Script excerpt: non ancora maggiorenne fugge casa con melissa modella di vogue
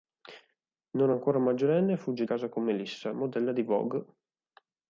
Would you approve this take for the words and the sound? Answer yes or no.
yes